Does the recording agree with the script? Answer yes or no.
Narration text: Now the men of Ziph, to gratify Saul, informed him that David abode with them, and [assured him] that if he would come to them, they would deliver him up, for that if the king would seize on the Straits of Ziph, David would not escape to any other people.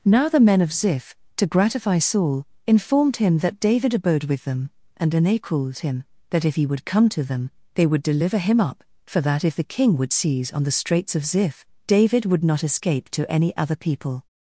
no